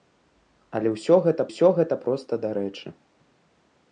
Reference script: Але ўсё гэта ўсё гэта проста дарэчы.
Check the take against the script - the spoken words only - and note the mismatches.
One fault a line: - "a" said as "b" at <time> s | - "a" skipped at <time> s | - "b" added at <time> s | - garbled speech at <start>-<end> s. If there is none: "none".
none